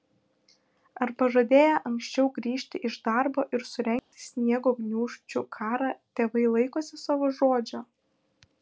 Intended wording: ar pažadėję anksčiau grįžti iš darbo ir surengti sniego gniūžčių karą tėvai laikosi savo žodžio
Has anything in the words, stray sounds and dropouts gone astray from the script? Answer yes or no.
yes